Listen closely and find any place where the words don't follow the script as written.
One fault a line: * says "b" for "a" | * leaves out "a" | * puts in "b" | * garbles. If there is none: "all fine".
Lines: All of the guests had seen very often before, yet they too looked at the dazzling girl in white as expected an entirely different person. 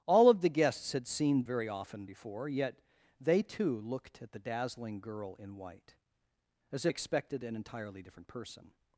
all fine